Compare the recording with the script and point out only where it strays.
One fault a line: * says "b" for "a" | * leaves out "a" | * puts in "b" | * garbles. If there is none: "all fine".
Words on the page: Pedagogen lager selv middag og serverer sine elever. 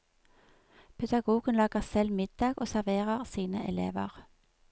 all fine